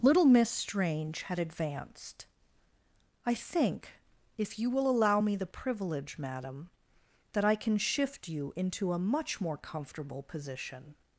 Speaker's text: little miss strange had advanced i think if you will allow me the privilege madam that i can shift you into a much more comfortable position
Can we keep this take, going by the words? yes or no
yes